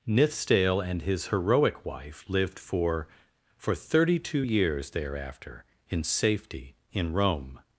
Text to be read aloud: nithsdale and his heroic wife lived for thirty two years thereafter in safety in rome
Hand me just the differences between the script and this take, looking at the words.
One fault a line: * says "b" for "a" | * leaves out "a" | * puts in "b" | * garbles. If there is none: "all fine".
* puts in "for"